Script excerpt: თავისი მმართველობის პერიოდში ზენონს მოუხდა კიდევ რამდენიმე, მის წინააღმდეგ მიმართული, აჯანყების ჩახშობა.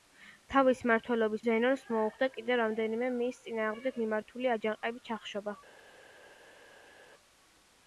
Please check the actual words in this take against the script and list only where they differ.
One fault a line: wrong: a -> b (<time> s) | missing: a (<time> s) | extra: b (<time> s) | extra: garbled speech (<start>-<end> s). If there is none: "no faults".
missing: პერიოდში (1.4 s)